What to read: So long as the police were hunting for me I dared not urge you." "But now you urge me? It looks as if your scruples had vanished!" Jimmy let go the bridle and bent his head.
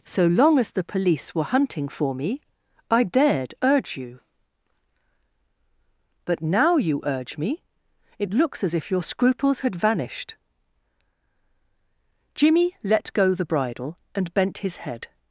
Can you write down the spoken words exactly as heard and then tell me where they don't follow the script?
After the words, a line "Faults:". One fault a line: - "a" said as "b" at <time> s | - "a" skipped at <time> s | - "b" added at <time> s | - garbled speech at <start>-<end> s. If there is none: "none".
So long as the police were hunting for me I dared urge you." "But now you urge me? It looks as if your scruples had vanished!" Jimmy let go the bridle and bent his head.
Faults:
- "not" skipped at 3.5 s